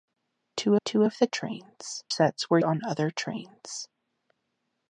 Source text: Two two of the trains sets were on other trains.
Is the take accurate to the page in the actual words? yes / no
yes